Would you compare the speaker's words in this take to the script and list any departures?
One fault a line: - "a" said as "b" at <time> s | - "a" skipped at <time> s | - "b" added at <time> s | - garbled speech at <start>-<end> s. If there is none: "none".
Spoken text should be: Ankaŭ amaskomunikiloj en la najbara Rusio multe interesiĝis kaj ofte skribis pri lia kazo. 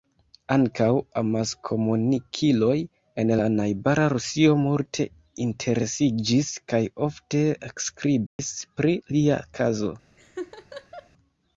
none